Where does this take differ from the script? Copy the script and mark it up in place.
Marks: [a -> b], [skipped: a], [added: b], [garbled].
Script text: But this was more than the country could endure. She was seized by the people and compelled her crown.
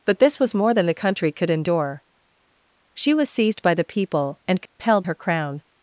But this was more than the country could endure. She was seized by the people and compelled her crown.